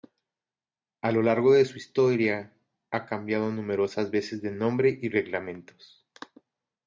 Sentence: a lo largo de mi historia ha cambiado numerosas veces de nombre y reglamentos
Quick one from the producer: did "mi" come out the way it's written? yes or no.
no